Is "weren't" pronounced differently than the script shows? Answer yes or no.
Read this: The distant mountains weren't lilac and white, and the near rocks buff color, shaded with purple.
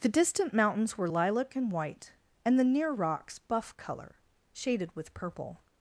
yes